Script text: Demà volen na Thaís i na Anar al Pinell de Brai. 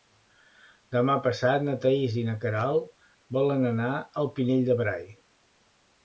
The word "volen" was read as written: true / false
false